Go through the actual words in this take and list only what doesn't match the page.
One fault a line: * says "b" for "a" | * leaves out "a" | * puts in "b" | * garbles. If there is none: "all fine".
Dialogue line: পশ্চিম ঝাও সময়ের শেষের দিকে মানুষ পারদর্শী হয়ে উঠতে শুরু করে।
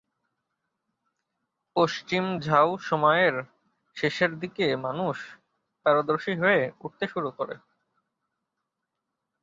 all fine